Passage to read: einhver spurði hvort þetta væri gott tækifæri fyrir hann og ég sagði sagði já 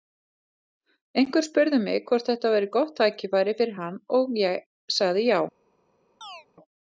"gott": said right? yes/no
yes